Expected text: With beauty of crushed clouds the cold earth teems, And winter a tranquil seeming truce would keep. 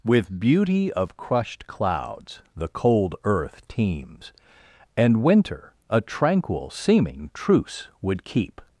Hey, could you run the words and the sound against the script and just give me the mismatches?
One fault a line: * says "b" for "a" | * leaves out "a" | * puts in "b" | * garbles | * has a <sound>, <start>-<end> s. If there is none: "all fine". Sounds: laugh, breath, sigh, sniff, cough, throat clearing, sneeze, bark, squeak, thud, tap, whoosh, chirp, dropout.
all fine